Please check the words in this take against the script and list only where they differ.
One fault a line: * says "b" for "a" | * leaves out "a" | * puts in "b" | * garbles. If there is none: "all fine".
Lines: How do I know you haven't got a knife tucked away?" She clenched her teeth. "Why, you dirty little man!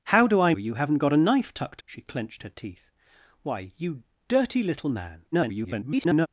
* leaves out "know"
* leaves out "away"
* garbles